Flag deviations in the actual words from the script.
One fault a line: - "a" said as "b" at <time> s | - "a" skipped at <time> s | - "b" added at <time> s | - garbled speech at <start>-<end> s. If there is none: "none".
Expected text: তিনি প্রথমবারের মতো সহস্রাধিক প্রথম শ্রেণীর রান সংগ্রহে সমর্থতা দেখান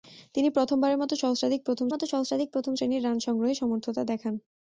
- "মতো সহস্রাধিক প্রথম" added at 1.9 s